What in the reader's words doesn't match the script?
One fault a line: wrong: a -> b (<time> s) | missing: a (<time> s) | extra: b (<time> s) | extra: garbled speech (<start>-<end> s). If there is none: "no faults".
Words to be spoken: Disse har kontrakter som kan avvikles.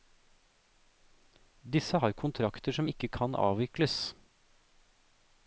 extra: ikke (2.9 s)